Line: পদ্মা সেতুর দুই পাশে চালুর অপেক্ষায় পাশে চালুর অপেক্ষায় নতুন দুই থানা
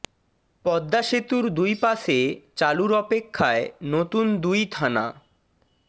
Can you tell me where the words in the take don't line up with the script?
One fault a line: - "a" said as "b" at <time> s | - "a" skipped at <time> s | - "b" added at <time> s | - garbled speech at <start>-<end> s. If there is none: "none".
- "পাশে চালুর অপেক্ষায়" skipped at 3.6 s